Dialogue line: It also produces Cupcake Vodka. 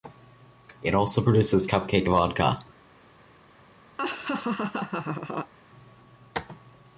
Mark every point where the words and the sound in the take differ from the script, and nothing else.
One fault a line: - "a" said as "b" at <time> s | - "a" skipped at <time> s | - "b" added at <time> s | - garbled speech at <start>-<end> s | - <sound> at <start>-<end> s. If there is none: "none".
- laugh at 4.0-5.5 s